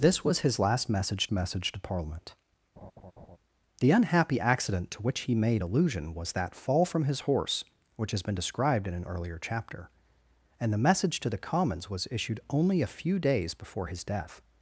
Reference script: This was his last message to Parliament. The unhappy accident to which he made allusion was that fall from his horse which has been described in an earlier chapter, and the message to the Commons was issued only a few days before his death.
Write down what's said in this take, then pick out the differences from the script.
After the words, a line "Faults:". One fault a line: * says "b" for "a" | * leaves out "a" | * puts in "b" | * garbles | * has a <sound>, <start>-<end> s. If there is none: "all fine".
This was his last message message to Parliament. The unhappy accident to which he made allusion was that fall from his horse which has been described in an earlier chapter, and the message to the Commons was issued only a few days before his death.
Faults:
* puts in "message"
* has a laugh, 2.8-3.4 s